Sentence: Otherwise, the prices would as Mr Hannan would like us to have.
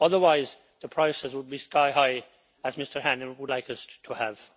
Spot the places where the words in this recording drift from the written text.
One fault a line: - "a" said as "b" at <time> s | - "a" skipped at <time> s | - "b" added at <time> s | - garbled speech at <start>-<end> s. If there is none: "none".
- "be sky high" added at 1.5 s